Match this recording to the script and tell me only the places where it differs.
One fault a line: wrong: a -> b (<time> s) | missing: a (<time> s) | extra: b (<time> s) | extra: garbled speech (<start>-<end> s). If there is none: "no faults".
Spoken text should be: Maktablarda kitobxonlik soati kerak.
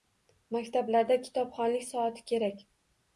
no faults